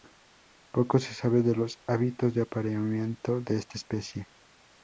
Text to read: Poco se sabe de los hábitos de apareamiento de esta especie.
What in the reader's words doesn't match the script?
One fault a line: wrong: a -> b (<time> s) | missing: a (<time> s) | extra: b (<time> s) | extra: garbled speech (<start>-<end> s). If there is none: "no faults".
no faults